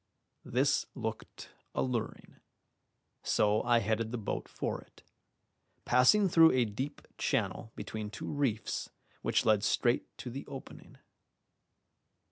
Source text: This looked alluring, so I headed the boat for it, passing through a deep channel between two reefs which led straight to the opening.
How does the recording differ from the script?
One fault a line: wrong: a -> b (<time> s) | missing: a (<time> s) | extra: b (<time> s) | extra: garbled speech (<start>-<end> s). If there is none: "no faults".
no faults